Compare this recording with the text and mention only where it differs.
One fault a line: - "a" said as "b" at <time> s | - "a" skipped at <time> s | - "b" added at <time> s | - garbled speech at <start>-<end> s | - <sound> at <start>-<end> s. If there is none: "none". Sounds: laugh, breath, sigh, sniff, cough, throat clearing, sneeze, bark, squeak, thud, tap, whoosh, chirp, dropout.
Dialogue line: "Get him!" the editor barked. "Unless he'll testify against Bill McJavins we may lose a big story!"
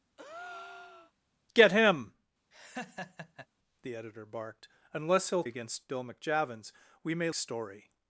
- breath at 0.2-1.1 s
- laugh at 2.5-3.5 s
- "testify" skipped at 5.4 s
- "lose a big" skipped at 7.3 s